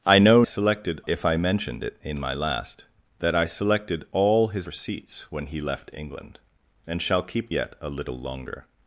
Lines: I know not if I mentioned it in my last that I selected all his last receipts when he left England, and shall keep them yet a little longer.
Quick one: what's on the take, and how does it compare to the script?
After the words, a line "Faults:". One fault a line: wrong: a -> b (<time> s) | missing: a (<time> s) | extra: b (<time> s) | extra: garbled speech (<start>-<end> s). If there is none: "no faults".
I know selected if I mentioned it in my last that I selected all his receipts when he left England, and shall keep yet a little longer.
Faults:
wrong: not -> selected (0.4 s)
missing: last (4.7 s)
missing: them (7.5 s)